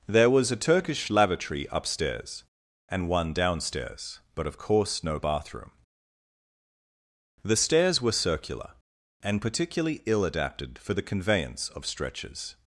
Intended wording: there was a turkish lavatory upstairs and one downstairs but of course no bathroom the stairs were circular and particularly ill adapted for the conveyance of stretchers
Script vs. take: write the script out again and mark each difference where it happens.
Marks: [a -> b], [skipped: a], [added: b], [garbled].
there was a turkish lavatory upstairs and one downstairs but of course no bathroom the stairs were circular and particularly ill adapted for the conveyance of stretchers